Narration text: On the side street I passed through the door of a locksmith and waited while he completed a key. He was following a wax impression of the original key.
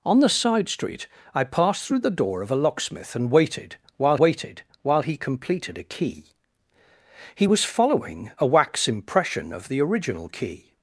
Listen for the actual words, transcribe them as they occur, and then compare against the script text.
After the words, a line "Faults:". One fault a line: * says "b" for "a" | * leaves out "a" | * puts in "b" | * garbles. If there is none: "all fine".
On the side street I passed through the door of a locksmith and waited while waited while he completed a key. He was following a wax impression of the original key.
Faults:
* puts in "waited while"